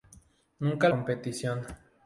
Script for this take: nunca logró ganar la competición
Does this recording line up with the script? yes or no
no